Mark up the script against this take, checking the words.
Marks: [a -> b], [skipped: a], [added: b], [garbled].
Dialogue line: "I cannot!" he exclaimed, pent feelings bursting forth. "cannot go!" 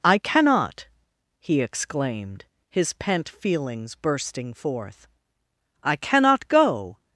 "I cannot!" he exclaimed, [added: his] pent feelings bursting forth. [added: I] "cannot go!"